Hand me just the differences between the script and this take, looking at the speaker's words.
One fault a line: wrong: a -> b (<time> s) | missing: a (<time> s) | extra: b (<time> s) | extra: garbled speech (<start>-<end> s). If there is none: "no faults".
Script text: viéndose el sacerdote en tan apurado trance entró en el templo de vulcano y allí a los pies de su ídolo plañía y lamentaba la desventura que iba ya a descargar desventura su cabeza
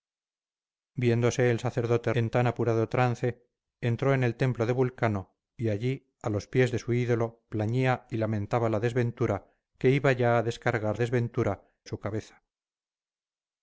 no faults